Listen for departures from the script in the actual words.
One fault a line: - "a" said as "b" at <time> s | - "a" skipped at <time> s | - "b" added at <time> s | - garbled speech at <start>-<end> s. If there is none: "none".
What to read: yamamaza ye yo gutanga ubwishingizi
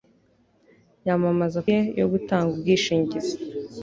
none